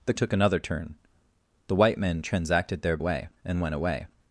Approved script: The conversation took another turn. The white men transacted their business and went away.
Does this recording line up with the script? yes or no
no